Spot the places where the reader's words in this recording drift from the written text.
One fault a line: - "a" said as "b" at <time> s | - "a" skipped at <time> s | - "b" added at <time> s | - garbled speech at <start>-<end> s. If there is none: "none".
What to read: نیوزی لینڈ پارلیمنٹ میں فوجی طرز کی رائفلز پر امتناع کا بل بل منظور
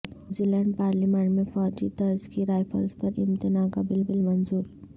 none